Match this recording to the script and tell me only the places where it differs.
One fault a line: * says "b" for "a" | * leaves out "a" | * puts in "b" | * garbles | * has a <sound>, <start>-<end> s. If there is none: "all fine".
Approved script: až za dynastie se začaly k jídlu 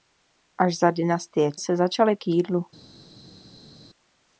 all fine